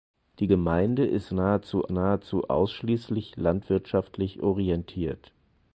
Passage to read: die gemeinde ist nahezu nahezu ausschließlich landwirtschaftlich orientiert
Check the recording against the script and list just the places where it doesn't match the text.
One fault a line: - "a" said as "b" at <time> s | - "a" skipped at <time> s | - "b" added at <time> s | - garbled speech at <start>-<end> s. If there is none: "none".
none